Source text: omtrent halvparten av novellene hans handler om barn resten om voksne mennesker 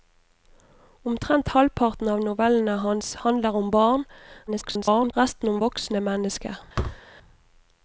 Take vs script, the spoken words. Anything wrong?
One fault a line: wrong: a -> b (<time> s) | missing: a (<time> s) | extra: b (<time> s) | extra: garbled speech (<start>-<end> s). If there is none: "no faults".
extra: garbled speech (4.5-5.1 s)